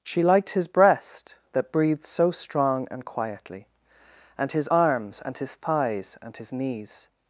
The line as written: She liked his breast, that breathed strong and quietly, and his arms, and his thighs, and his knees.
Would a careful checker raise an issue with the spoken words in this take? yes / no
yes